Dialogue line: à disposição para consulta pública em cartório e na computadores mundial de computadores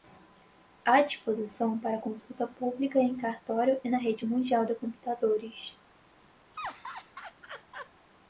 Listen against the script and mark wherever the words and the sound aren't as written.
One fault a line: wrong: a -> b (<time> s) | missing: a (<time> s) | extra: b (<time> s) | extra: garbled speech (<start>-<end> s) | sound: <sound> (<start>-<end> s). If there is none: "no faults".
wrong: computadores -> rede (4.0 s)
sound: laugh (6.5-7.9 s)